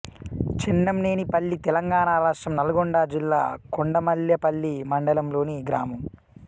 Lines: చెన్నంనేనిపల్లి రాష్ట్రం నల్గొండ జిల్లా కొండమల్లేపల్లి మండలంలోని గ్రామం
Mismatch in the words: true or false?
true